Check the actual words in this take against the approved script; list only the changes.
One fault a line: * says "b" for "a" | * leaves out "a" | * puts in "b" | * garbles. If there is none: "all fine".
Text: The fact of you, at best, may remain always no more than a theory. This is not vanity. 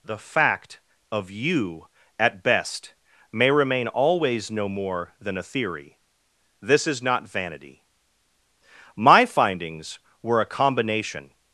* puts in "My findings were a combination"